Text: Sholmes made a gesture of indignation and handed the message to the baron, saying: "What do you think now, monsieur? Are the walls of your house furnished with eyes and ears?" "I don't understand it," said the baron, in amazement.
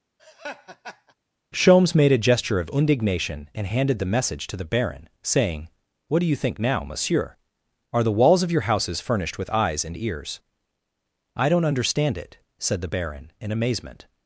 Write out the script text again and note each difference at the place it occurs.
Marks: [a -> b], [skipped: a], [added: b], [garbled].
Sholmes made a gesture of indignation and handed the message to the baron, saying: "What do you think now, monsieur? Are the walls of your [house -> houses] furnished with eyes and ears?" "I don't understand it," said the baron, in amazement.